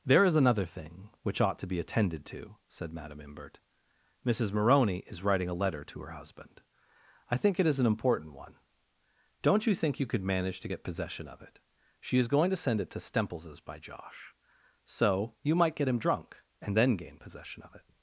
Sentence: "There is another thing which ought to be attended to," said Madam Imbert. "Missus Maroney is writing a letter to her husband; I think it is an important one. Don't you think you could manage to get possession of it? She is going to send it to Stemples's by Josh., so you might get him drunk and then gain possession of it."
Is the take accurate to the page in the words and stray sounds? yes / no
yes